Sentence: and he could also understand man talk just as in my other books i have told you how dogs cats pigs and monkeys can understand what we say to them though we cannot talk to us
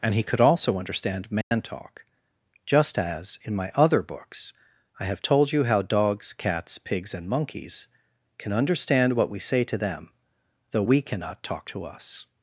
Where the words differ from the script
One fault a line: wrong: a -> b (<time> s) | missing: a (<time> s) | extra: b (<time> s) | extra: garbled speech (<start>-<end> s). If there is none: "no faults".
no faults